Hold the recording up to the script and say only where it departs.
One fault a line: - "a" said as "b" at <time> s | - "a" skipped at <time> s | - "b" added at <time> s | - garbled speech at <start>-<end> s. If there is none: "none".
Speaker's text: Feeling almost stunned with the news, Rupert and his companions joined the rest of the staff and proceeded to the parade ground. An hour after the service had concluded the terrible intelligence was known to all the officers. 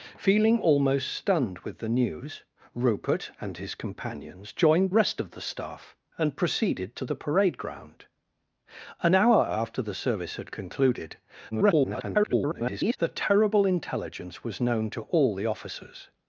- "the" skipped at 4.9 s
- garbled speech at 11.5-13.0 s